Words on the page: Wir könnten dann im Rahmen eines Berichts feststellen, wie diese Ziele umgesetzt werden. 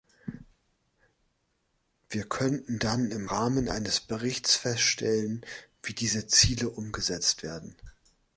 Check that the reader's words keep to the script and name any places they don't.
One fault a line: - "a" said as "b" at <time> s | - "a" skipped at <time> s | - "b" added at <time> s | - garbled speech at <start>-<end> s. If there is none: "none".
none